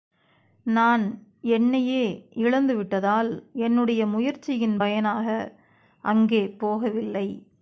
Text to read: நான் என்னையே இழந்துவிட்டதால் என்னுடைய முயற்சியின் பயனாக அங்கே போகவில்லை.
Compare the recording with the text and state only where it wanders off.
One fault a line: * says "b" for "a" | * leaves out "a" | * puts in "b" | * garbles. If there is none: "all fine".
all fine